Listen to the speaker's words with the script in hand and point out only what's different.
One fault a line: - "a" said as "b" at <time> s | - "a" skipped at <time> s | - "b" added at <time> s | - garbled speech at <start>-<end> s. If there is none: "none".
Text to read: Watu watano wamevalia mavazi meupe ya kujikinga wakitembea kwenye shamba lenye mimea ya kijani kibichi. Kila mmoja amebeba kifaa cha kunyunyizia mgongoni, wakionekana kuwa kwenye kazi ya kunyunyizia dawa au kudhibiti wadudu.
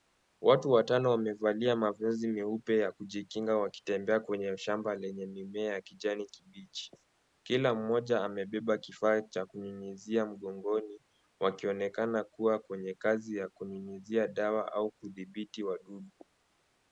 none